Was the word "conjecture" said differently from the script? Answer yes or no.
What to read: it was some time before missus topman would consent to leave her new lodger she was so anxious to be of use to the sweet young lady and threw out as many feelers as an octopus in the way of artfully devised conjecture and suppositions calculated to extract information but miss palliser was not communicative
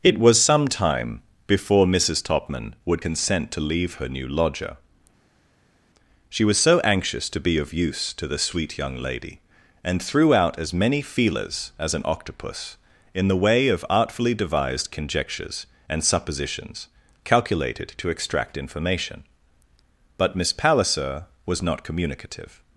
yes